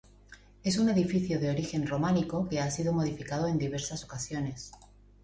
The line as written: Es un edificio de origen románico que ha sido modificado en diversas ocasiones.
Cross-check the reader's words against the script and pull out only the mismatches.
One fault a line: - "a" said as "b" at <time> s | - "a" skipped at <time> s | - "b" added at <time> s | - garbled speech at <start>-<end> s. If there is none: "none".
none